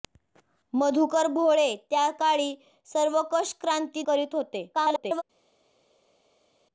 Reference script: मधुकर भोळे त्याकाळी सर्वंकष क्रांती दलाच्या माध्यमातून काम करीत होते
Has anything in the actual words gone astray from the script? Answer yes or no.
yes